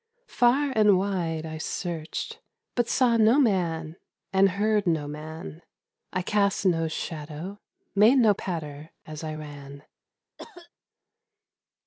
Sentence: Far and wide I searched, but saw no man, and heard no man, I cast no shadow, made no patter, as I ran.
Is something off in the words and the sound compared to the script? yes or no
yes